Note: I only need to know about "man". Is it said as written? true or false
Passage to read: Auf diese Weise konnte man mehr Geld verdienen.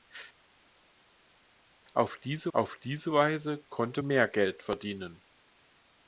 false